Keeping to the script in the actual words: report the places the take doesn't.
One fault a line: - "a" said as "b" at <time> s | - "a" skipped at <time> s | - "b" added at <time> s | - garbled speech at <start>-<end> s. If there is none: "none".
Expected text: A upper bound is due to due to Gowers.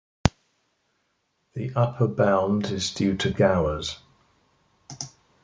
- "A" said as "The" at 1.5 s
- "due to" skipped at 3.3 s